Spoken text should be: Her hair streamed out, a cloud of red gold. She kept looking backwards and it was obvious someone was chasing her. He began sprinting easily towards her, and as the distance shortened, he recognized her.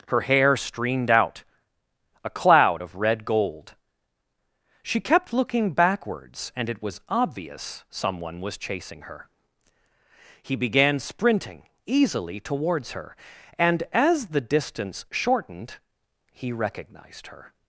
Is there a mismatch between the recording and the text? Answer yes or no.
no